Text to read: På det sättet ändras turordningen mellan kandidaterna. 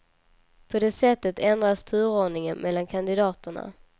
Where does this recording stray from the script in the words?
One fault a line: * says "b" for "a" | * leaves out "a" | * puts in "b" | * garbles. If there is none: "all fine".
all fine